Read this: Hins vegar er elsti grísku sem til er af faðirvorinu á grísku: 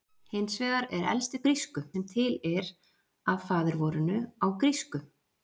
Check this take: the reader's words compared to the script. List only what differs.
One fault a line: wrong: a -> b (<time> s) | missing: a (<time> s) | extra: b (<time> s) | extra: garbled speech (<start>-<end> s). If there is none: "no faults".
no faults